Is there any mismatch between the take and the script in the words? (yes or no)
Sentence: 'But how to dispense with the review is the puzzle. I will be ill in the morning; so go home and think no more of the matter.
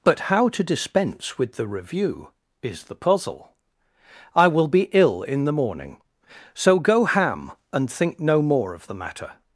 yes